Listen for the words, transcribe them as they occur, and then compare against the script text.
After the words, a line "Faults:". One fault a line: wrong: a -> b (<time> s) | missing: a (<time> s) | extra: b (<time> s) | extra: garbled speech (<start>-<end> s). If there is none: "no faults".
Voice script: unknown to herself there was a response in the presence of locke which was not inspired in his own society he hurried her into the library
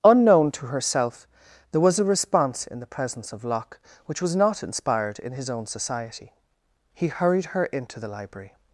unknown to herself there was a response in the presence of locke which was not inspired in his own society he hurried her into the library
Faults:
no faults